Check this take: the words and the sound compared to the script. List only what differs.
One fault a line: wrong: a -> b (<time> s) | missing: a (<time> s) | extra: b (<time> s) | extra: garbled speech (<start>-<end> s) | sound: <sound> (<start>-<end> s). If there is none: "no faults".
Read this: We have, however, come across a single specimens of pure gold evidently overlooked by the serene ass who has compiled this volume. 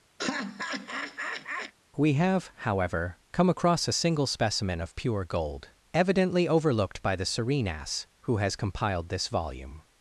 sound: laugh (0.2-1.7 s)
wrong: specimens -> specimen (4.3 s)